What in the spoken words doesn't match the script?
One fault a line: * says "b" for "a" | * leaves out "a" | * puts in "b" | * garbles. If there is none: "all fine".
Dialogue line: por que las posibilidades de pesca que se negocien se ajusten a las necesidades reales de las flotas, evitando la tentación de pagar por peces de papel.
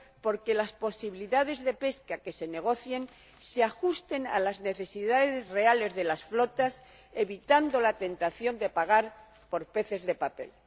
all fine